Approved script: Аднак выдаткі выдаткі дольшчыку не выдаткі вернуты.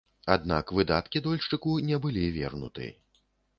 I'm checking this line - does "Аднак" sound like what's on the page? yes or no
yes